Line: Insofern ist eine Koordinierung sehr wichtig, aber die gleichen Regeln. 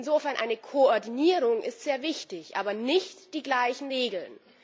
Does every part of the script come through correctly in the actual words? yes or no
no